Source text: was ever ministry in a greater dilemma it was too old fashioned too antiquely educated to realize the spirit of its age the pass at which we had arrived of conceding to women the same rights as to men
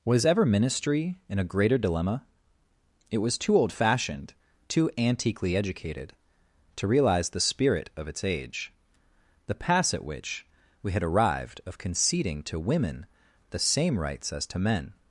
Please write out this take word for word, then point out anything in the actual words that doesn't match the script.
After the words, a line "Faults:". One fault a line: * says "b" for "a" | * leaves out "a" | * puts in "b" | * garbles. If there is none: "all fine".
was ever ministry in a greater dilemma it was too old fashioned too antiquely educated to realize the spirit of its age the pass at which we had arrived of conceding to women the same rights as to men
Faults:
all fine